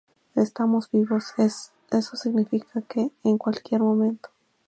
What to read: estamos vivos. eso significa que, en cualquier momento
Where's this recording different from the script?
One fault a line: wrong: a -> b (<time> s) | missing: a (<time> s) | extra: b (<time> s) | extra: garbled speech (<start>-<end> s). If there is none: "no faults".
no faults